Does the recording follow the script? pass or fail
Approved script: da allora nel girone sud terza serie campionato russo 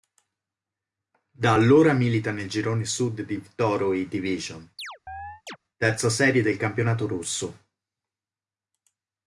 fail